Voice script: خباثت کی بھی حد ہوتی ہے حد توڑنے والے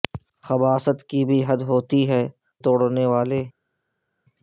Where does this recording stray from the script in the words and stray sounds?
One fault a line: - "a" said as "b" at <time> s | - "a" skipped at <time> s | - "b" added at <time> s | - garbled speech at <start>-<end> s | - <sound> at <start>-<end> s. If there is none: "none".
- "حد" skipped at 2.2 s